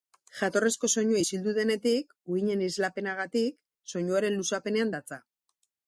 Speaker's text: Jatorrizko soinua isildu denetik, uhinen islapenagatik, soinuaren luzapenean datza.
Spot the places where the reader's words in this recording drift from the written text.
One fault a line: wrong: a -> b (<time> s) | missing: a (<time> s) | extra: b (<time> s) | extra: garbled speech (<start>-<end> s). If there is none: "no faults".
no faults